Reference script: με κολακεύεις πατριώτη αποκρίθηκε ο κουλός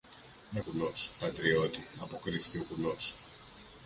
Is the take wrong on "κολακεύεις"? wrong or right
wrong